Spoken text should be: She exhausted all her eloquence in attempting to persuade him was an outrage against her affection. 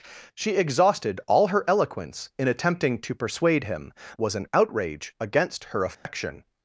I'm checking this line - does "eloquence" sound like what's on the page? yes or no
yes